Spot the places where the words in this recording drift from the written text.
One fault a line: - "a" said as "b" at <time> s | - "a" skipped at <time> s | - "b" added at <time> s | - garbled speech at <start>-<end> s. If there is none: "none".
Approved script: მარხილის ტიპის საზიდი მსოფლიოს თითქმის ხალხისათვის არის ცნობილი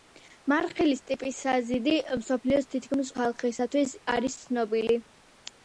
none